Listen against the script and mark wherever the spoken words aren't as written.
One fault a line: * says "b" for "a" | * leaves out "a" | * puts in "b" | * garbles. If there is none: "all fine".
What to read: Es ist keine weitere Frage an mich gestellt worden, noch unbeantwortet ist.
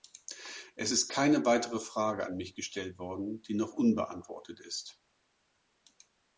* puts in "die"